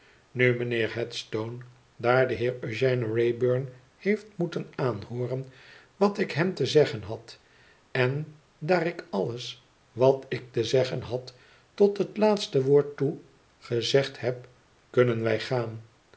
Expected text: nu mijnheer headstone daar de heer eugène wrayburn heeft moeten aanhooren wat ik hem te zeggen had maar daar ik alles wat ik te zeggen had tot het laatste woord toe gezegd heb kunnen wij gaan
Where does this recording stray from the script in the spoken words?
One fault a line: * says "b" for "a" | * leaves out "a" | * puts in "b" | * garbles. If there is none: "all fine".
* says "en" for "maar"